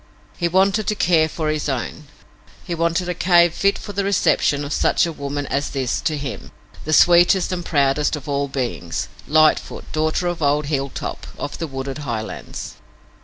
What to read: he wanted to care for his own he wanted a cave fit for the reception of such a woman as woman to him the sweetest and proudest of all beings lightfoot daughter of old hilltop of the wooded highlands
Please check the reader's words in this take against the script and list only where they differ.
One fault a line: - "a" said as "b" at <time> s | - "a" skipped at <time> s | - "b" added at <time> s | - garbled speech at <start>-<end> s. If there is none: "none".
- "woman" said as "this" at 5.7 s